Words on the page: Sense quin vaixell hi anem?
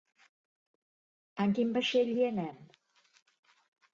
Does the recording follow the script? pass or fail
fail